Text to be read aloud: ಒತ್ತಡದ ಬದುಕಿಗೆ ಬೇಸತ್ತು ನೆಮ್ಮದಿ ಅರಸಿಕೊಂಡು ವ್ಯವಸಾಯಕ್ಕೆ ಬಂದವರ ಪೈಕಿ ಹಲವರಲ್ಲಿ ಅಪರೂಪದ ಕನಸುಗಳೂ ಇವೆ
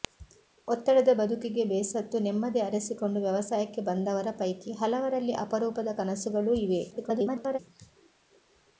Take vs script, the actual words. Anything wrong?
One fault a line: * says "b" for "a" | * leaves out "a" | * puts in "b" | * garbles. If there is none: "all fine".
* garbles